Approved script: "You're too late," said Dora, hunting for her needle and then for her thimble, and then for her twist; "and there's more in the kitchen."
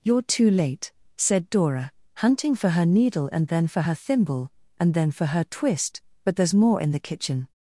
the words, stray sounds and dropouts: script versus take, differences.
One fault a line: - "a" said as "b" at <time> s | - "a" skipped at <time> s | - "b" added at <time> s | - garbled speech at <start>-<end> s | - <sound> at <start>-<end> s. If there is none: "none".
- "and" said as "but" at 6.2 s